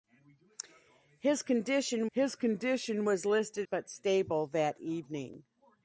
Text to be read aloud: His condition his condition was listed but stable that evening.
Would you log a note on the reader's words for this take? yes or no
no